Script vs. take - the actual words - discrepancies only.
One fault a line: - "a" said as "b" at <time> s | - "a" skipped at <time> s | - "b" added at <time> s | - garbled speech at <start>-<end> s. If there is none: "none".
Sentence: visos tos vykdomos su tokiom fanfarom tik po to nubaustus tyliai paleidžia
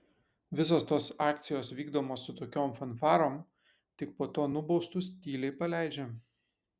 - "akcijos" added at 1.2 s